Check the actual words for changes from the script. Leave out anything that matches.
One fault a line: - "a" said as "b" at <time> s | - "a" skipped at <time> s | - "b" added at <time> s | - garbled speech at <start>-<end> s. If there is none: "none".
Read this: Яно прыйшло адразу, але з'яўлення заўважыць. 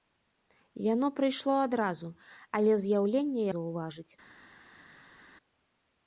none